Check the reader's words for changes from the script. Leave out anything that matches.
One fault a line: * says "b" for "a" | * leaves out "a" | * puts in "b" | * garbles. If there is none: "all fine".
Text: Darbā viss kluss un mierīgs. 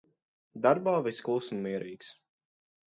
all fine